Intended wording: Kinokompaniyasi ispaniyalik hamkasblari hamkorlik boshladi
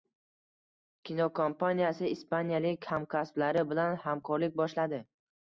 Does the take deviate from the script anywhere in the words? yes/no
yes